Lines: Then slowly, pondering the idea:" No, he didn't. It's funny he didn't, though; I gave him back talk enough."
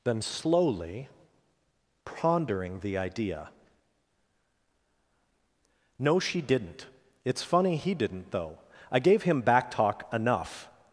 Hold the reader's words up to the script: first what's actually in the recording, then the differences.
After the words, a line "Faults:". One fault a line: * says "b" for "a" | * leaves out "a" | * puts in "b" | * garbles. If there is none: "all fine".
Then slowly, pondering the idea:" No, she didn't. It's funny he didn't, though; I gave him back talk enough."
Faults:
* says "she" for "he"